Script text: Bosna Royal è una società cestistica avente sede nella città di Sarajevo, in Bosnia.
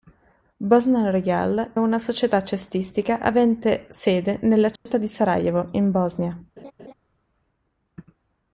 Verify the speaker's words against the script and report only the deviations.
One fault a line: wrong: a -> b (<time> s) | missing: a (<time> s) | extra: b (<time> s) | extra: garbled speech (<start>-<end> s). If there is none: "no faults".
missing: è (1.7 s)